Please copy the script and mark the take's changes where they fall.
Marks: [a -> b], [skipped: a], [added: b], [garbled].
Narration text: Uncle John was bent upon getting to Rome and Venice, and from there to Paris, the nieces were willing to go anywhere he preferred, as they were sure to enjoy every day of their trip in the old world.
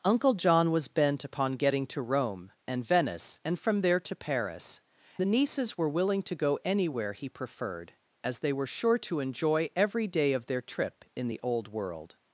Uncle John was bent upon getting to Rome and Venice, and from there to Paris, the nieces were willing to go anywhere he preferred, as they were sure to enjoy every day of their trip in the old world.